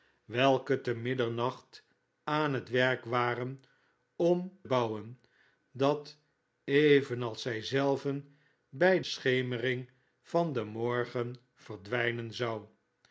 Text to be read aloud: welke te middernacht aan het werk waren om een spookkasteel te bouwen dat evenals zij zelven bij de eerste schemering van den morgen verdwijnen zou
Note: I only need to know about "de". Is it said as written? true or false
false